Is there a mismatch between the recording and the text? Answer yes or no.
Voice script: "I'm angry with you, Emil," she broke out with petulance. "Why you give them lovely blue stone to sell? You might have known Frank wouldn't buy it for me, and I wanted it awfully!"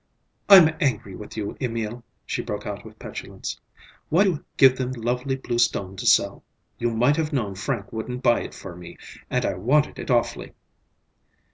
no